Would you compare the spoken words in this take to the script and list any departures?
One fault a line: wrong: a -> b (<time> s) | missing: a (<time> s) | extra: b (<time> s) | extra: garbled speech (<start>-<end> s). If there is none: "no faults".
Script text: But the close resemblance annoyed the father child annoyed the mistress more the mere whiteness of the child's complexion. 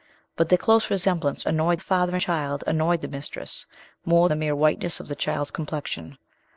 no faults